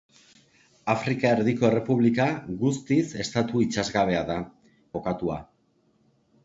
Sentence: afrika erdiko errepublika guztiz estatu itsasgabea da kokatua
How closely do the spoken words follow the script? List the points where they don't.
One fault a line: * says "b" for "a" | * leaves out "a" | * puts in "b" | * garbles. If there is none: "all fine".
all fine